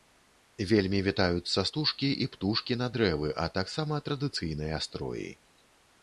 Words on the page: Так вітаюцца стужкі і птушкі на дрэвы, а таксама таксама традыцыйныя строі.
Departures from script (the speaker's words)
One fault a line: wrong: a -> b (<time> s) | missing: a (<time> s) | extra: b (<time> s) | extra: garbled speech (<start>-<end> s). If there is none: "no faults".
wrong: Так -> Вельмі (0.7 s)
missing: таксама (4.0 s)